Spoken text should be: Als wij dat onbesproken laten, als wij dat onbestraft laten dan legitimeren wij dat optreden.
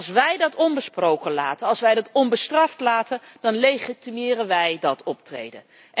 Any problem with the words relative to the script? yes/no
no